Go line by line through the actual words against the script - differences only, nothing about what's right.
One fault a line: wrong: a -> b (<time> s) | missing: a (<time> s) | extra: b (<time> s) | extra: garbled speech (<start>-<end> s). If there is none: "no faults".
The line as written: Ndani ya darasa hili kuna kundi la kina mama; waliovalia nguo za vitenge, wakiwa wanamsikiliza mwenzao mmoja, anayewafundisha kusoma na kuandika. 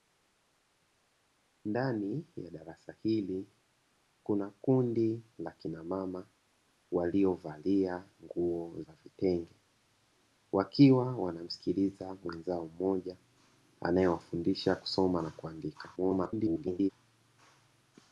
extra: garbled speech (16.0-16.9 s)